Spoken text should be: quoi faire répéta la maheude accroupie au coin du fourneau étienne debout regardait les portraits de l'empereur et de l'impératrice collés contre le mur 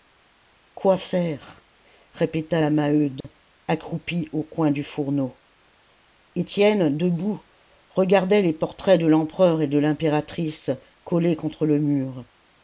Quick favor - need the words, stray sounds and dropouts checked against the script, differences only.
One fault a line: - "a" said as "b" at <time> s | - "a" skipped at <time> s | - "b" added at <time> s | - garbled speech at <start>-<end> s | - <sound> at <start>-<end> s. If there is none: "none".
- dropout at 3.2-3.2 s